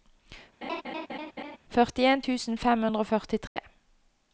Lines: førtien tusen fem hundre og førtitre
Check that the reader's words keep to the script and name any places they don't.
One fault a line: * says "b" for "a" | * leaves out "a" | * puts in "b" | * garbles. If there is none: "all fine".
all fine